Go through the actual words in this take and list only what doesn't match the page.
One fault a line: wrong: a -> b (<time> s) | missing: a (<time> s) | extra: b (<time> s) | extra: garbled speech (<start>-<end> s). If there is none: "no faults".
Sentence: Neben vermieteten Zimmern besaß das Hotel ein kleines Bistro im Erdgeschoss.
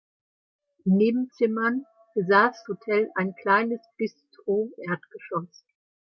missing: vermieteten (1.3 s)
missing: das (2.6 s)
missing: im (4.7 s)